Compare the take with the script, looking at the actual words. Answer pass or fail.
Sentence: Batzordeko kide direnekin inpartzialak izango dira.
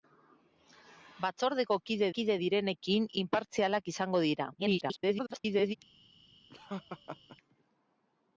fail